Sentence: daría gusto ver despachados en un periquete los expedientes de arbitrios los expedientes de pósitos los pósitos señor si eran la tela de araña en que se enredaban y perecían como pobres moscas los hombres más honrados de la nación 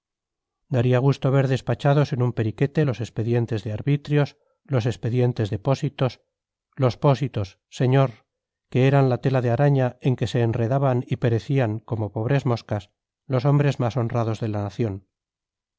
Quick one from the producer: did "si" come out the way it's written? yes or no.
no